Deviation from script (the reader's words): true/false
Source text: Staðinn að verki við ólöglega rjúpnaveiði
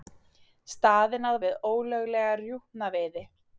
true